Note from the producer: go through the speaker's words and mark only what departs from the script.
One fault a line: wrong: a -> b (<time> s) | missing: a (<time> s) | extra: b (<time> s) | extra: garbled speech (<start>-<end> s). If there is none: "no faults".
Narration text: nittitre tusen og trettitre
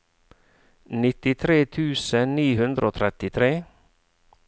extra: ni hundre (2.4 s)